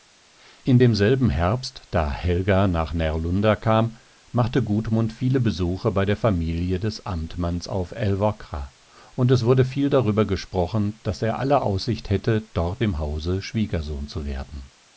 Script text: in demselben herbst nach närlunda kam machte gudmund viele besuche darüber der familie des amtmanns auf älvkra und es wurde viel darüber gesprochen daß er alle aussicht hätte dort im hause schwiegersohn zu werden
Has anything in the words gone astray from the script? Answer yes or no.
yes